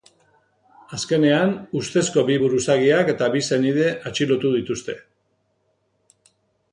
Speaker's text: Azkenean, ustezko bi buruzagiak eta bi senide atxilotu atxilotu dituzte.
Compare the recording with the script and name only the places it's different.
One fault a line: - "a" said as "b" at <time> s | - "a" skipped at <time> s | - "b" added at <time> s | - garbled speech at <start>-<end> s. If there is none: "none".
- "atxilotu" skipped at 4.5 s